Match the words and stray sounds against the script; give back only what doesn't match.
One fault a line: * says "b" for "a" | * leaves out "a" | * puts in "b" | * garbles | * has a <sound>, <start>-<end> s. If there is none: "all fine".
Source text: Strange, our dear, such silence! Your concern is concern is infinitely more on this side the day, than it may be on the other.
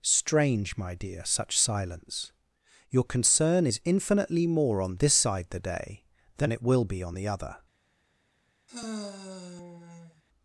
* says "my" for "our"
* leaves out "concern is"
* says "will" for "may"
* has a sigh, 8.7-10.2 s